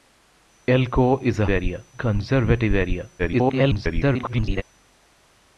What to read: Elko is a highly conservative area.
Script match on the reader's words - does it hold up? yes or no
no